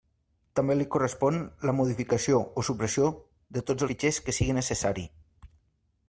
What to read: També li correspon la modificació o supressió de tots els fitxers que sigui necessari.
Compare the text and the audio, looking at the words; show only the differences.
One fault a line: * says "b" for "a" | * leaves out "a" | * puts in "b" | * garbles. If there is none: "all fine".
* leaves out "els"